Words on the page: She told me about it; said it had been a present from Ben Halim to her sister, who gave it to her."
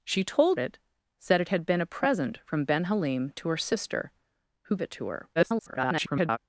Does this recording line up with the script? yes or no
no